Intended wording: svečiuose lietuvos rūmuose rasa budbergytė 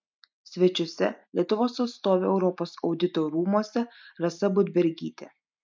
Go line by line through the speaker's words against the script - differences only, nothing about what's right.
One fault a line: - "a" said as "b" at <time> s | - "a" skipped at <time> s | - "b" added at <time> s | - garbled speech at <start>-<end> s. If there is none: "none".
- "atstovė europos audito" added at 1.9 s